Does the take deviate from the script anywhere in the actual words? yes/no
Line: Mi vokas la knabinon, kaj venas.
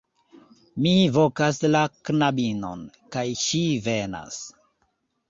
yes